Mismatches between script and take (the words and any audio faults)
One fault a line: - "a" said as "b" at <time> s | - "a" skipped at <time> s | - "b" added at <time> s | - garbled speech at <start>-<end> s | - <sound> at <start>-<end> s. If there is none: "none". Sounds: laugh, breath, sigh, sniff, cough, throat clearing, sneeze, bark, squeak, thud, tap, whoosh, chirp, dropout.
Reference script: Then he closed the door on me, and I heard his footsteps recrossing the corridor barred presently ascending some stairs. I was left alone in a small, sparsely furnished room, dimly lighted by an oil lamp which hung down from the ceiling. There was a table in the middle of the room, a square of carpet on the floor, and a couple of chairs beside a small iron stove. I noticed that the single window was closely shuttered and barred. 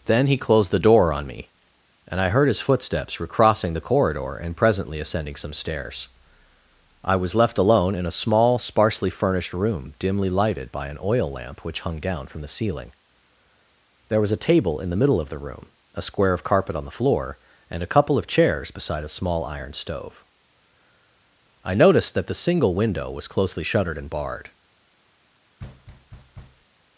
- "barred" said as "and" at 4.3 s
- thud at 25.6-26.7 s